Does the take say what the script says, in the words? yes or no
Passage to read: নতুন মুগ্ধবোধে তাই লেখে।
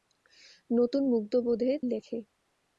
no